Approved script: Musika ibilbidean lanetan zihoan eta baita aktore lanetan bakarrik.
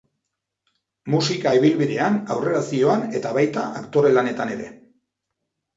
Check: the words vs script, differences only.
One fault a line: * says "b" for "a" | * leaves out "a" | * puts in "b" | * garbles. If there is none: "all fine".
* says "aurrera" for "lanetan"
* says "ere" for "bakarrik"